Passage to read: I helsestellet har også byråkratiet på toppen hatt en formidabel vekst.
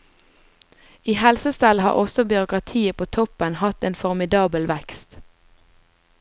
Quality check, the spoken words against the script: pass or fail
pass